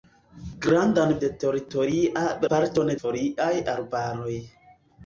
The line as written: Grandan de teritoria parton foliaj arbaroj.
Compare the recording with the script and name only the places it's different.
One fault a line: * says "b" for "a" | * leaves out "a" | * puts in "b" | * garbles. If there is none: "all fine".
all fine